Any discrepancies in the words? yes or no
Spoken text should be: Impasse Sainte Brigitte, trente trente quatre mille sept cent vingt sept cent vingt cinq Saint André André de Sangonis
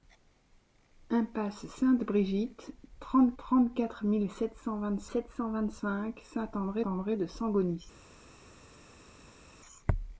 no